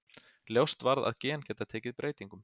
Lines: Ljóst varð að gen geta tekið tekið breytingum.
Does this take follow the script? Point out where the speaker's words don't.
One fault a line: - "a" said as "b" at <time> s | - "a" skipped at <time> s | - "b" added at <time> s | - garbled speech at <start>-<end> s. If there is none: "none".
- "tekið" skipped at 2.0 s